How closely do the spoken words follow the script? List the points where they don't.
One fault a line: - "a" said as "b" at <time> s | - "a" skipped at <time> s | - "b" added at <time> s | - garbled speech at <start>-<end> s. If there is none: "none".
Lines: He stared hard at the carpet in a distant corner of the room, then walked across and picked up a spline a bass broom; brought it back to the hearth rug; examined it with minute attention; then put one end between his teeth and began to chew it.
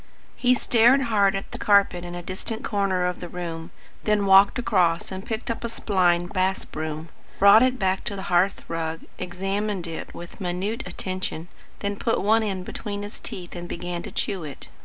none